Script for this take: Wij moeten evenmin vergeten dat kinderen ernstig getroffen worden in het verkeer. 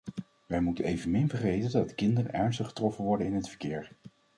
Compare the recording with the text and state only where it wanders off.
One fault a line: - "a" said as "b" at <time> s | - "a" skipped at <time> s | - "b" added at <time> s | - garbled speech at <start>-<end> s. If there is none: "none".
none